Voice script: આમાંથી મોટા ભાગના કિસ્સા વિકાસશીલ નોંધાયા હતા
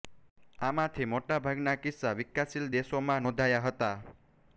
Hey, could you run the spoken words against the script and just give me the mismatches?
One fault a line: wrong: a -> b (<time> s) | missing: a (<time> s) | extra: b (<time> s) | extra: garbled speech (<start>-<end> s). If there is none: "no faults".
extra: દેશોમાં (2.8 s)